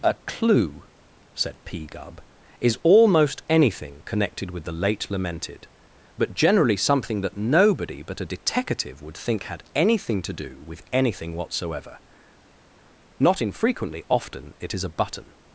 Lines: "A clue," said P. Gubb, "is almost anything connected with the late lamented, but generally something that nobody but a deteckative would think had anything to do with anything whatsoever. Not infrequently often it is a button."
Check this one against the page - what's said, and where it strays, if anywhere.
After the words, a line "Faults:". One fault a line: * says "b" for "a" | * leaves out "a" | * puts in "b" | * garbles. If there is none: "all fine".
"A clue," said P. Gubb, "is almost anything connected with the late lamented, but generally something that nobody but a deteckative would think had anything to do with anything whatsoever. Not infrequently often it is a button."
Faults:
all fine